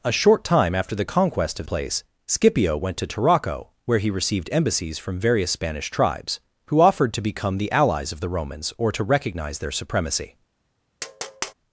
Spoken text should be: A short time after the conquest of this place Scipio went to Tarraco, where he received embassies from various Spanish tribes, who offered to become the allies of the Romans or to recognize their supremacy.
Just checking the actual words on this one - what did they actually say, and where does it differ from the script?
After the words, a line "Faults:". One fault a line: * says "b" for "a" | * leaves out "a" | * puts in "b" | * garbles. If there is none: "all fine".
A short time after the conquest of place Scipio went to Tarraco, where he received embassies from various Spanish tribes, who offered to become the allies of the Romans or to recognize their supremacy.
Faults:
* leaves out "this"